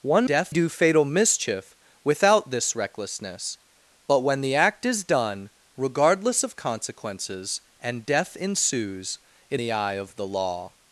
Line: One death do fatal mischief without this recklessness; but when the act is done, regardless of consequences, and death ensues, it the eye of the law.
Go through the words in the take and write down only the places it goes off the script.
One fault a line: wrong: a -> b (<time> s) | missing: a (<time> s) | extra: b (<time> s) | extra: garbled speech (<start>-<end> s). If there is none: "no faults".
no faults